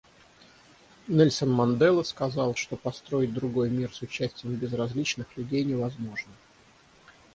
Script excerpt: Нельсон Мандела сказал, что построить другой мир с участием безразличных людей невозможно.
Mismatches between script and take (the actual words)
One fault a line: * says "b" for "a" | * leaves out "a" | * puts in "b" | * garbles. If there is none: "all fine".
all fine